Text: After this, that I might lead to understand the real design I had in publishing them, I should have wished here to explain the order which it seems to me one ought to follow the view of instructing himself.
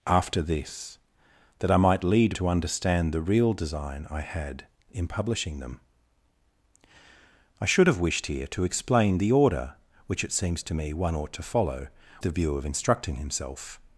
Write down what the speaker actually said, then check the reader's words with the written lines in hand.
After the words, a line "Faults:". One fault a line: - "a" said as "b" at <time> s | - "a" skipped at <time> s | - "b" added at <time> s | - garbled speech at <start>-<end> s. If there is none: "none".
After this, that I might lead to understand the real design I had in publishing them, I should have wished here to explain the order which it seems to me one ought to follow the view of instructing himself.
Faults:
none